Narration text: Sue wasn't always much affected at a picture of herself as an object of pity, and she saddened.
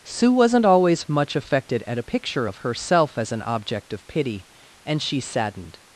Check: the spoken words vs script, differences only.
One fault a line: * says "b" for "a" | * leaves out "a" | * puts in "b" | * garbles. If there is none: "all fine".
all fine